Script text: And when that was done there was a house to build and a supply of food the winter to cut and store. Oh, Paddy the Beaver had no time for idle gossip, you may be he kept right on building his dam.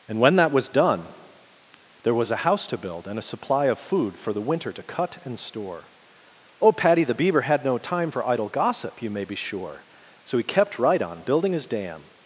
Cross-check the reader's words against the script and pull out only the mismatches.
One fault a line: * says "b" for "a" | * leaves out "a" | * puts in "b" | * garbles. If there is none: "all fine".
* puts in "for"
* puts in "sure So"